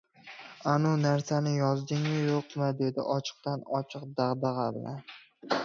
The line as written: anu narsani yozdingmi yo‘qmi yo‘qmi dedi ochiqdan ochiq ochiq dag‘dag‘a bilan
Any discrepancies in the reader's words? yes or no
yes